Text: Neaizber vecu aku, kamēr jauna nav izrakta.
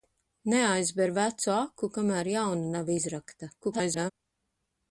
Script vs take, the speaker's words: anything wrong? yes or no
yes